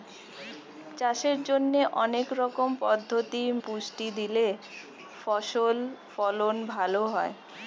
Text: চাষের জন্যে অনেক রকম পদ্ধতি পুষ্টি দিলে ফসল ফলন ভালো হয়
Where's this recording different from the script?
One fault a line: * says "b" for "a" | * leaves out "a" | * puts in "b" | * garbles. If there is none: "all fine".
all fine